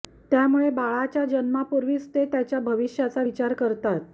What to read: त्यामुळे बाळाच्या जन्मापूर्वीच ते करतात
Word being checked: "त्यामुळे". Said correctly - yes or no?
yes